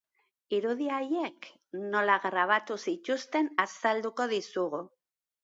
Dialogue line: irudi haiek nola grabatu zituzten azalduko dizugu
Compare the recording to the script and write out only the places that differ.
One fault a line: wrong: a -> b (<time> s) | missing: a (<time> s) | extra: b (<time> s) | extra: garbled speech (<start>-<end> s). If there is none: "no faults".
no faults